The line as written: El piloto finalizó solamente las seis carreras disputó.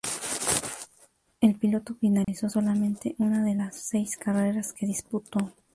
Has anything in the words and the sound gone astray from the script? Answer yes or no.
yes